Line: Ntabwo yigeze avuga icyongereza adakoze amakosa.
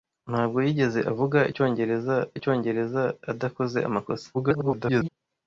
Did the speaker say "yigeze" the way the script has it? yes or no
yes